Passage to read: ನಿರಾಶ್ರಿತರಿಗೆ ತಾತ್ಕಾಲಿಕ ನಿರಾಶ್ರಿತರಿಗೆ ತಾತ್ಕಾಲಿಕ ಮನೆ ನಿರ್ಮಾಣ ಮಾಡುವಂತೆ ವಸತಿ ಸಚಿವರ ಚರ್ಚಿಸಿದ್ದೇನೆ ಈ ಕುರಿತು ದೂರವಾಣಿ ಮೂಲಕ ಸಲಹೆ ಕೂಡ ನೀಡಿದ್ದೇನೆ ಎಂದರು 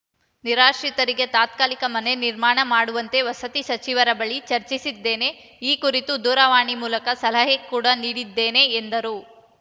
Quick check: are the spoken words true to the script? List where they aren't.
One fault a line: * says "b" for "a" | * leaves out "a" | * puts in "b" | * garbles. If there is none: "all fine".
* leaves out "ನಿರಾಶ್ರಿತರಿಗೆ ತಾತ್ಕಾಲಿಕ"
* puts in "ಬಳಿ"